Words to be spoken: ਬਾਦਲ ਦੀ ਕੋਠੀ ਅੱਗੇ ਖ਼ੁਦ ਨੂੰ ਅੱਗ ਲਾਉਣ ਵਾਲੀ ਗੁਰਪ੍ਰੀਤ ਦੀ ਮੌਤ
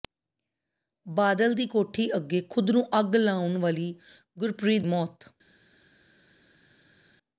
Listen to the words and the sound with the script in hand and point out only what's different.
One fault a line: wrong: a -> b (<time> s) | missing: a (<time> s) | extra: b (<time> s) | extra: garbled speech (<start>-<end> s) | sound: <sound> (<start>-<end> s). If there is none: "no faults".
missing: ਦੀ (4.8 s)